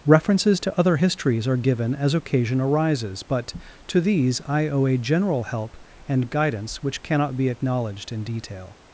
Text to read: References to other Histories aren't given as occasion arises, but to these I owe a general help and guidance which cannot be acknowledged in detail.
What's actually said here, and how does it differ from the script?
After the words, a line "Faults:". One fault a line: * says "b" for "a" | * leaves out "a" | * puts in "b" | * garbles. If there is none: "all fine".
References to other Histories are given as occasion arises, but to these I owe a general help and guidance which cannot be acknowledged in detail.
Faults:
* says "are" for "aren't"